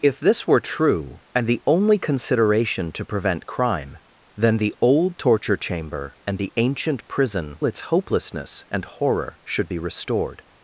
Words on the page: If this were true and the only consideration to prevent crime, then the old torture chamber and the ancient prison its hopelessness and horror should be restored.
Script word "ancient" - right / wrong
right